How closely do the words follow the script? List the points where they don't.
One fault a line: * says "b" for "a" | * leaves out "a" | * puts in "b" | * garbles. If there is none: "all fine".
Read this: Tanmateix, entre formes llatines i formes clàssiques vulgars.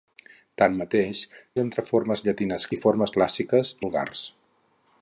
all fine